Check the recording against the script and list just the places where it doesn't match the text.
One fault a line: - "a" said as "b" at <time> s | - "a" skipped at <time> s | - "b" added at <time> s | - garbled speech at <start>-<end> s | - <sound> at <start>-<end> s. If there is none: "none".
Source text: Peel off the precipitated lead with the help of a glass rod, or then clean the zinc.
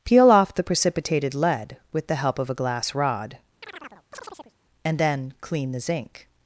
- chirp at 3.6-4.5 s
- "or" said as "and" at 4.8 s